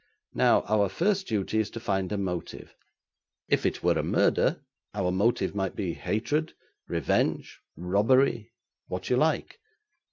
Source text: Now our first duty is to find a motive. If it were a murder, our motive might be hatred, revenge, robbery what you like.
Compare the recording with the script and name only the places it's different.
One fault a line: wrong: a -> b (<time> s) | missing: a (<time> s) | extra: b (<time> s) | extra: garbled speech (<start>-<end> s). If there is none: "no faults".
no faults